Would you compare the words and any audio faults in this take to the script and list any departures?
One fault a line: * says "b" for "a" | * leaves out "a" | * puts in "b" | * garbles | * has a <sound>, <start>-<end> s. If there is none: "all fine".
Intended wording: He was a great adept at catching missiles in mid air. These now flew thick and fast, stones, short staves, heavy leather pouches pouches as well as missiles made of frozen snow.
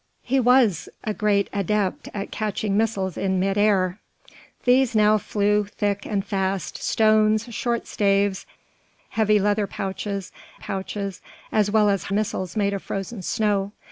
all fine